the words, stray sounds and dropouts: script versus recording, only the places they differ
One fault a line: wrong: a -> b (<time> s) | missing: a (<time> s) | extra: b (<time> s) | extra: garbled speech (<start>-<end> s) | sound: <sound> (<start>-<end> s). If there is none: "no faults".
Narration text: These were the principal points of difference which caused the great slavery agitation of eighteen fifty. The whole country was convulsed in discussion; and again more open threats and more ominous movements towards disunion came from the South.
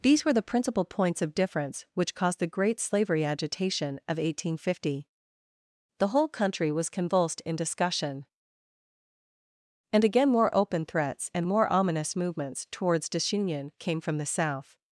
no faults